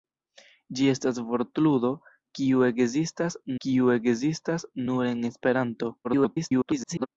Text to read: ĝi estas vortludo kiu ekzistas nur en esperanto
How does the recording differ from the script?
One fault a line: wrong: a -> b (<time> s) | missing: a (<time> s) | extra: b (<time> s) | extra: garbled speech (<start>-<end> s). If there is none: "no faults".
extra: kiu ekzistas (3.7 s)
extra: garbled speech (6.0-7.1 s)